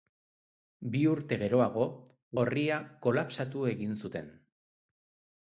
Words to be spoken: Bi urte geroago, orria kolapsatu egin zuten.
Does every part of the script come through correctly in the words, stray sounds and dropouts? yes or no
yes